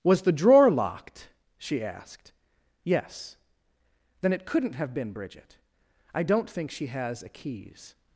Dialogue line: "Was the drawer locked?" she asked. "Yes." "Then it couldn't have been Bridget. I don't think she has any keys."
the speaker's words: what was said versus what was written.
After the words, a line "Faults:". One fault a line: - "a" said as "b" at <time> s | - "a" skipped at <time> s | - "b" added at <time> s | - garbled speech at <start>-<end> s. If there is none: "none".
"Was the drawer locked?" she asked. "Yes." "Then it couldn't have been Bridget. I don't think she has a keys."
Faults:
- "any" said as "a" at 7.2 s